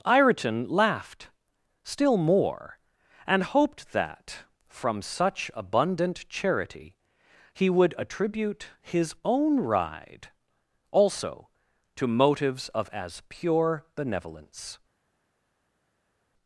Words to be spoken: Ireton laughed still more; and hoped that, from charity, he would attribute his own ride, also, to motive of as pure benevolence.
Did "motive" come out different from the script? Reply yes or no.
yes